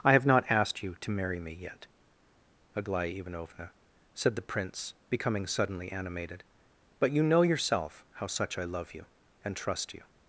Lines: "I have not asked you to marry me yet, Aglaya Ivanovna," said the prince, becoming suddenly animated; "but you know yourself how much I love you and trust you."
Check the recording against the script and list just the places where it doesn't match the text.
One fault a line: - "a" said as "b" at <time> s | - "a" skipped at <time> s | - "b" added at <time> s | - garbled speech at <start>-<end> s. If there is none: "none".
- "much" said as "such" at 8.3 s